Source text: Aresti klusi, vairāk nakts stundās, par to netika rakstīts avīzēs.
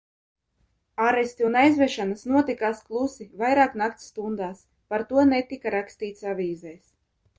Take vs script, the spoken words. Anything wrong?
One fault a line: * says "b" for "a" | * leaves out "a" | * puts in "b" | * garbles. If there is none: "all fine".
* puts in "un aizvešanas notikās"